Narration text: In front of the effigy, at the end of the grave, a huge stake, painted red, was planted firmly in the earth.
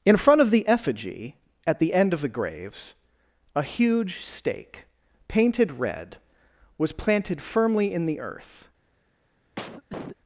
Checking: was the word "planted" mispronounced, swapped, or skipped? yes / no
no